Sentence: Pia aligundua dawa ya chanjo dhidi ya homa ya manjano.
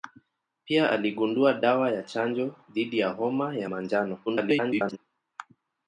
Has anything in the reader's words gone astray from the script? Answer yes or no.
yes